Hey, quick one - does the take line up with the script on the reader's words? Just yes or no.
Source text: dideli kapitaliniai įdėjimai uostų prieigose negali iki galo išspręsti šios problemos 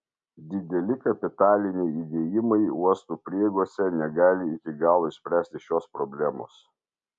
yes